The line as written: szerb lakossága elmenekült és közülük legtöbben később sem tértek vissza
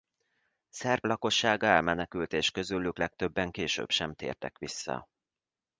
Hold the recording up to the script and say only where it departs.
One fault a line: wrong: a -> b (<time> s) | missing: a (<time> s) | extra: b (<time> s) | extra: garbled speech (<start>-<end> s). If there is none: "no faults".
no faults